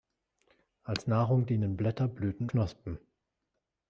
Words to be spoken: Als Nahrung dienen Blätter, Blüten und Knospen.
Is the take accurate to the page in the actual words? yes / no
no